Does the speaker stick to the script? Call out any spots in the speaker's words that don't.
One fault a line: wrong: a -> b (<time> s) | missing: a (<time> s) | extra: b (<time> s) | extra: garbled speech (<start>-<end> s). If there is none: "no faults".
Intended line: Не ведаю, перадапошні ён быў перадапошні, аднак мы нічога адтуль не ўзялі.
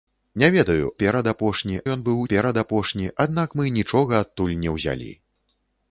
no faults